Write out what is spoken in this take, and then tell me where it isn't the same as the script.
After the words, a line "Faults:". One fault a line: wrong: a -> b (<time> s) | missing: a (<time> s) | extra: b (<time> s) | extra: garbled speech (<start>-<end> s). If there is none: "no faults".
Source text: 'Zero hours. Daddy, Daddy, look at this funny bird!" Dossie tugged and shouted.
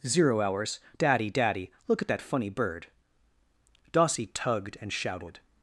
'Zero hours. Daddy, Daddy, look at that funny bird!" Dossie tugged and shouted.
Faults:
wrong: this -> that (2.1 s)